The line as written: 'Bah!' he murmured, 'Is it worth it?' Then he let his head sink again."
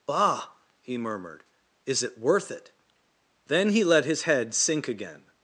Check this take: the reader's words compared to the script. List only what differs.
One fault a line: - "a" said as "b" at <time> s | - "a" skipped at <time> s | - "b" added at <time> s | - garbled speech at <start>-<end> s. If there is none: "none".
none